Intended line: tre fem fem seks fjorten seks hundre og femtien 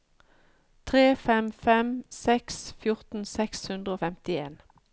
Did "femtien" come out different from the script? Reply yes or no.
no